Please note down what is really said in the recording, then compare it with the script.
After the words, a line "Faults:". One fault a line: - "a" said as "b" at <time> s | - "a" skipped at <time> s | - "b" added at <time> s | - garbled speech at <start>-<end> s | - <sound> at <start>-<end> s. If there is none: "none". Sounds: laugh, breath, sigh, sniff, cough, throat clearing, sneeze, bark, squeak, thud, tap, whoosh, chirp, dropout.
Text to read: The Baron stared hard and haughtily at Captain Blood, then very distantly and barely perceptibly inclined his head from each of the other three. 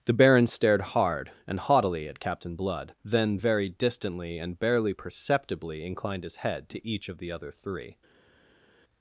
The Baron stared hard and haughtily at Captain Blood, then very distantly and barely perceptibly inclined his head to each of the other three.
Faults:
- "from" said as "to" at 6.7 s